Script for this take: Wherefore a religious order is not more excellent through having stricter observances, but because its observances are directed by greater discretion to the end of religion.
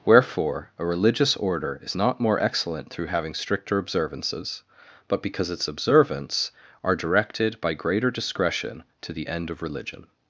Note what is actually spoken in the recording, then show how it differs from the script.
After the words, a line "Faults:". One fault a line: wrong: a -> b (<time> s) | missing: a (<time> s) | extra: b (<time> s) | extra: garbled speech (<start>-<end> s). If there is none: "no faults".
Wherefore a religious order is not more excellent through having stricter observances, but because its observance are directed by greater discretion to the end of religion.
Faults:
wrong: observances -> observance (5.7 s)